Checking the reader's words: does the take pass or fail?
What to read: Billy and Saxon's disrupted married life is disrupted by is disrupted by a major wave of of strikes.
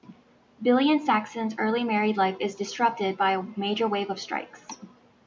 fail